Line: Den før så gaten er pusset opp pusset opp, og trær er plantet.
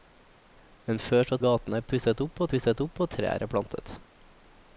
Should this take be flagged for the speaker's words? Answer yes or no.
no